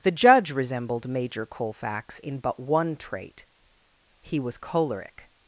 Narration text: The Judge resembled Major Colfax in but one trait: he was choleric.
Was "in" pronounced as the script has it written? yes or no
yes